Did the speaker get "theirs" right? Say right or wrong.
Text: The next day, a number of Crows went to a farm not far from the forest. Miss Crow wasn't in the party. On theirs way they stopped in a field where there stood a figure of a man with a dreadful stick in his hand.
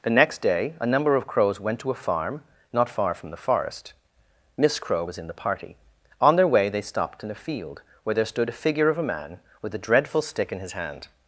wrong